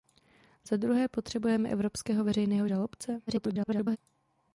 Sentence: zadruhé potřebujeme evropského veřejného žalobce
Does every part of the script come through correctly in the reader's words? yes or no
no